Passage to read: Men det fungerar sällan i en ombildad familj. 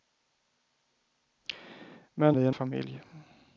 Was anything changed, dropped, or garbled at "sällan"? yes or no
yes